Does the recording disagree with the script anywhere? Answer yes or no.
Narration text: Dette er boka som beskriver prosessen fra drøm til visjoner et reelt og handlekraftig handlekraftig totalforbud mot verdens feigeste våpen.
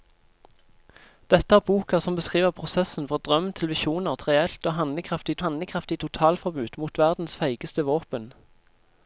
no